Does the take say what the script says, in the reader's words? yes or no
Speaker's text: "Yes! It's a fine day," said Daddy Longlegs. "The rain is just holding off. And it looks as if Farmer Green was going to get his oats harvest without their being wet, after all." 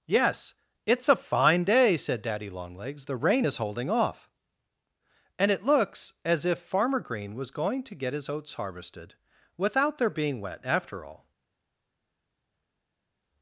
no